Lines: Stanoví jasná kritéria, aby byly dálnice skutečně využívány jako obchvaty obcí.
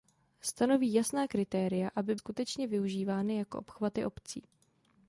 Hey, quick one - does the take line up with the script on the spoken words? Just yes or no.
no